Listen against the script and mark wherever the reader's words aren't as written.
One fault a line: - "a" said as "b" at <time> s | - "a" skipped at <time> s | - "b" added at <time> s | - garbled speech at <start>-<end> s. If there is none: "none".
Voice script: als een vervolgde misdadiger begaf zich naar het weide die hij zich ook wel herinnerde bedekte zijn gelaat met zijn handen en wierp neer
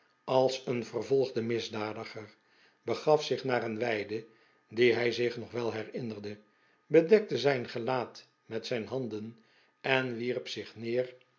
- "het" said as "een" at 3.6 s
- "ook" said as "nog" at 5.4 s
- "zich" added at 10.5 s